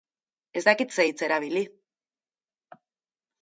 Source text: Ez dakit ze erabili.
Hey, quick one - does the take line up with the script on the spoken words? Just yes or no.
no